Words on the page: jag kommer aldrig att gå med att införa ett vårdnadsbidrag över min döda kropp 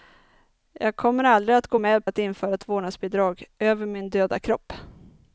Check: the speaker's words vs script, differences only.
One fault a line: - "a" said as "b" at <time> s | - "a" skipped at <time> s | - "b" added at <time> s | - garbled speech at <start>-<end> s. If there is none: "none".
none